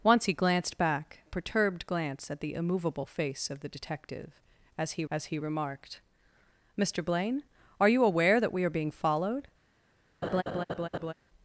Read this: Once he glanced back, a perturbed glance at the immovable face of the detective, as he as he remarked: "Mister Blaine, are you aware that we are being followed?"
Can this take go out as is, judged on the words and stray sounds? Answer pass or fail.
fail